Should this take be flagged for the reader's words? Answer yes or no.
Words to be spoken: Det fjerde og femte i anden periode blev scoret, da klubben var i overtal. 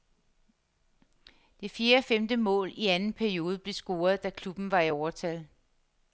yes